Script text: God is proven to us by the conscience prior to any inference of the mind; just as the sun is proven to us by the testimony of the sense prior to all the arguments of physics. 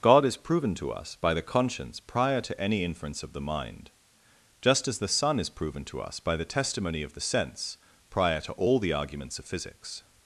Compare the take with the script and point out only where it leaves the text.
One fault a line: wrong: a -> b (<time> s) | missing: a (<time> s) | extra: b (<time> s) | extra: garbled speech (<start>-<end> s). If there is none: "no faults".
no faults